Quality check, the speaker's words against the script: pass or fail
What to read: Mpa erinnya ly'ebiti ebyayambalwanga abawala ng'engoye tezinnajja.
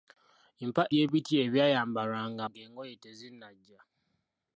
fail